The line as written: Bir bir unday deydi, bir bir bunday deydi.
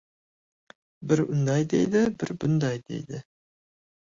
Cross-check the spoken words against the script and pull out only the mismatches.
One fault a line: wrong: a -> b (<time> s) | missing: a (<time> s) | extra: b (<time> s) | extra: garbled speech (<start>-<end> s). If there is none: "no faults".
missing: bir (1.2 s)
missing: bir (2.4 s)